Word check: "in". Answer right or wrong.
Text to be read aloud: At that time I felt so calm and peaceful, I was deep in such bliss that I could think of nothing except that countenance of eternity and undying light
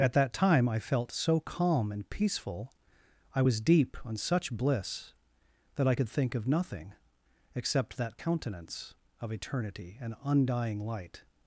wrong